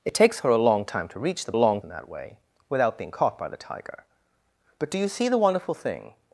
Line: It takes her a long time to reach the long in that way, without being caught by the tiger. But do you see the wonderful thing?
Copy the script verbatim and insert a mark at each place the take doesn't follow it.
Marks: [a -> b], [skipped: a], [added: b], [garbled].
It takes her a long time to reach the long in that way, without being caught by the tiger. But do you see the wonderful thing?